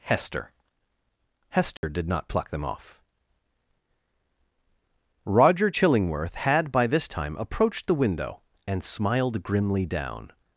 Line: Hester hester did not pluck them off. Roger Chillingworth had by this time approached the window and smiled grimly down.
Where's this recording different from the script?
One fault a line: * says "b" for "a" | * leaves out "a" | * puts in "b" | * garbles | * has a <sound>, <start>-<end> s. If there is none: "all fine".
* has a dropout, 1.8-1.8 s